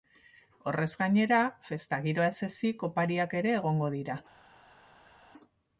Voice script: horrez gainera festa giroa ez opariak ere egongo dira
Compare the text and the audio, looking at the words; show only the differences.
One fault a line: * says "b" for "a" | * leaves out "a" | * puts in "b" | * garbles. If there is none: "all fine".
* puts in "ezik"